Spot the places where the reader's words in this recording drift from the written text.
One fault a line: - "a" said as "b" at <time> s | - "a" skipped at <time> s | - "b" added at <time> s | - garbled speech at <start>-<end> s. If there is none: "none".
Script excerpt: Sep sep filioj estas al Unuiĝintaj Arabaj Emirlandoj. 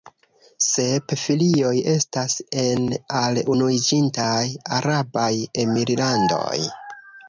- "sep" skipped at 1.1 s
- "en" added at 2.6 s